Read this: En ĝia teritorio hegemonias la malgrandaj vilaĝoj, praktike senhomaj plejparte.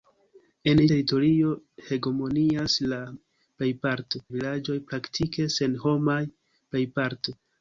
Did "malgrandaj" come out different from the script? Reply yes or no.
yes